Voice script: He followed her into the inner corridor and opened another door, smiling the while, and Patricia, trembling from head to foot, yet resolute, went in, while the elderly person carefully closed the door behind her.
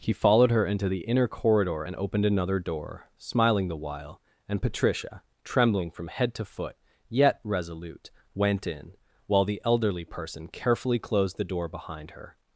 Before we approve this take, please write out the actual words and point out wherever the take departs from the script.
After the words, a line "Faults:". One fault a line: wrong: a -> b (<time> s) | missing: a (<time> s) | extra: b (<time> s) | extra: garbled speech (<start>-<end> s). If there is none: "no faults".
He followed her into the inner corridor and opened another door, smiling the while, and Patricia, trembling from head to foot, yet resolute, went in, while the elderly person carefully closed the door behind her.
Faults:
no faults